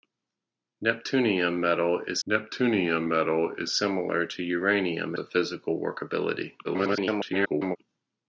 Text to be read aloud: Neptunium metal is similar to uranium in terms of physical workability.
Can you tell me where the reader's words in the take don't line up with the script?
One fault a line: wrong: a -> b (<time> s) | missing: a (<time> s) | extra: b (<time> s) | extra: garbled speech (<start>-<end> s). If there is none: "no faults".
extra: neptunium metal is (2.3 s)
missing: in terms (5.1 s)
extra: garbled speech (6.6-7.8 s)